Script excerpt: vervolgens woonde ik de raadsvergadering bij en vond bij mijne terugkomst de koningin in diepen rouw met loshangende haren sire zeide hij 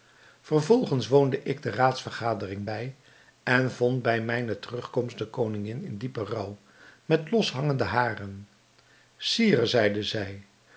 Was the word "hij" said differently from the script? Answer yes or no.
yes